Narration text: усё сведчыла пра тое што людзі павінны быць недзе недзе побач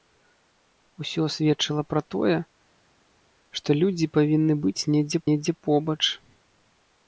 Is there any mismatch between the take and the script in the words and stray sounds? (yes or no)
no